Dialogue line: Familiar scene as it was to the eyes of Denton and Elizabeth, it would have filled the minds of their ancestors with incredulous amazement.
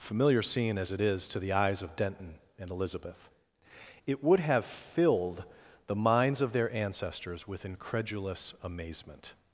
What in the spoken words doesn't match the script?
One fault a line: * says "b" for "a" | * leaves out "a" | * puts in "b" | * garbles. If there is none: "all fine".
* says "is" for "was"